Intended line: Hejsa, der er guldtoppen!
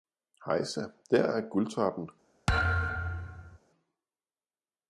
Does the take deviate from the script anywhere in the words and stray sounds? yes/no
yes